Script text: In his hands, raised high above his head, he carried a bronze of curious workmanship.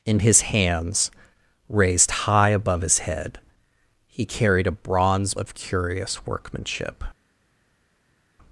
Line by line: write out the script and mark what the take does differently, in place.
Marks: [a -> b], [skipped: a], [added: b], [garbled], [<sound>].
In his hands, raised high above his head, he carried a bronze of curious workmanship.